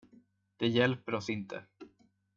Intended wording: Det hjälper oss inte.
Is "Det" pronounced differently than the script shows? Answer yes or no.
no